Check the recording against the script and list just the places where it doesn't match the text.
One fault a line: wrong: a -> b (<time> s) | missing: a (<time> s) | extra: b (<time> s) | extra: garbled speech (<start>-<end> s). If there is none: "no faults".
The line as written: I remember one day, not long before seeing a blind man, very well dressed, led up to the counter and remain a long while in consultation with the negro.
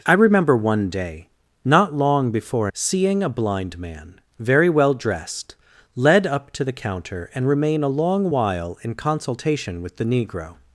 no faults